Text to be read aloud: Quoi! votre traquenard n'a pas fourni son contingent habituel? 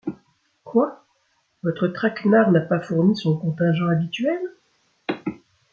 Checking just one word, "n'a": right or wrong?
right